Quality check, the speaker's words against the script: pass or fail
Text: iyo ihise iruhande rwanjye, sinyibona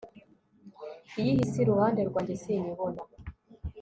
pass